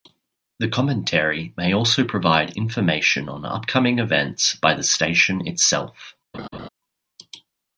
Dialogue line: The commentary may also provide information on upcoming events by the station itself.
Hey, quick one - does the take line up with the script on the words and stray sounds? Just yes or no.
no